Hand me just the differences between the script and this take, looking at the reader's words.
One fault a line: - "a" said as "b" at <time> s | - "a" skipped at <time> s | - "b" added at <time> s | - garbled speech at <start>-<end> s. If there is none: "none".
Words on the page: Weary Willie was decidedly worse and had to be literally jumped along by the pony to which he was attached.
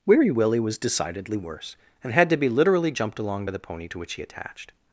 - "was" skipped at 4.2 s